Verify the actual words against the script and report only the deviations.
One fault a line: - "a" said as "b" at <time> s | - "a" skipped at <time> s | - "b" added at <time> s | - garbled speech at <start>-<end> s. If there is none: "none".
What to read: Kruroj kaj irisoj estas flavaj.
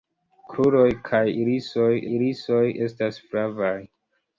- "irisoj" added at 2.1 s